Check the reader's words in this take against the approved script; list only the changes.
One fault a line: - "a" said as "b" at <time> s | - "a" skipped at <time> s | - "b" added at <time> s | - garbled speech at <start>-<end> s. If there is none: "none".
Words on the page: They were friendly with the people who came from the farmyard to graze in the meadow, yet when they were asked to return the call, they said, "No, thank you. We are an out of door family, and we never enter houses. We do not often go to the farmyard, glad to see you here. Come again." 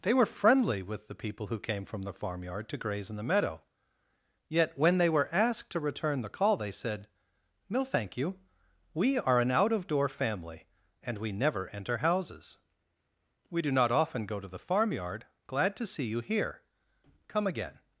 none